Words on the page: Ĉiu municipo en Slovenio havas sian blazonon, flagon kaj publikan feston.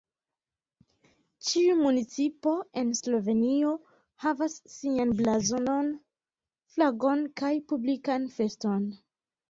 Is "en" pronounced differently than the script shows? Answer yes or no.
no